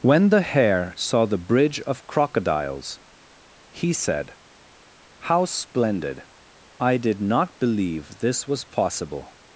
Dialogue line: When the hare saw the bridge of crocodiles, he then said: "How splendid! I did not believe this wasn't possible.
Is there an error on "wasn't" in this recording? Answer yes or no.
yes